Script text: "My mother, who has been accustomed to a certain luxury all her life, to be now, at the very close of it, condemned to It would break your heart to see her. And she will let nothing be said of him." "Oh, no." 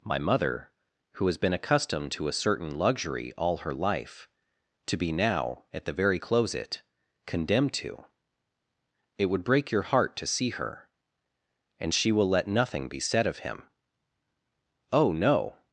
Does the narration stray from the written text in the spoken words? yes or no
yes